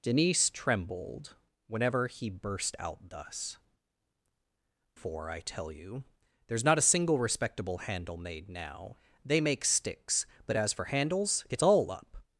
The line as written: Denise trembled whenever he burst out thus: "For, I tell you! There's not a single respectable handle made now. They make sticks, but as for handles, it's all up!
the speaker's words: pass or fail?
pass